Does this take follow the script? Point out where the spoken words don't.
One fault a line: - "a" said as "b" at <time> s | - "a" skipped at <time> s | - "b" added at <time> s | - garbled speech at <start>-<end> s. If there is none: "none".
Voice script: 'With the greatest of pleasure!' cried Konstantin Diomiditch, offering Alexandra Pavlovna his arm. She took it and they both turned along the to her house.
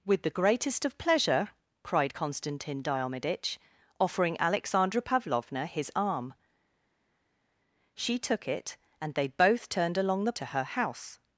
none